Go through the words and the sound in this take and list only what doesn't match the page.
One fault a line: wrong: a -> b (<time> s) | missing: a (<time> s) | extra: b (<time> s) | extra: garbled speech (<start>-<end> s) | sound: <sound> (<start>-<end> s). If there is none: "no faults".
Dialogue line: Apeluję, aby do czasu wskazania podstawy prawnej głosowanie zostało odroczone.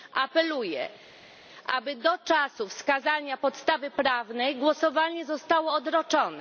no faults